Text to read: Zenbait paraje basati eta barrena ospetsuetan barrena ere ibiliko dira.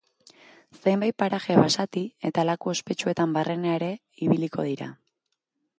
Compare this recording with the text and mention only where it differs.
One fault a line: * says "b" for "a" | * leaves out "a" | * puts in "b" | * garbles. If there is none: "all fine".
* says "laku" for "barrena"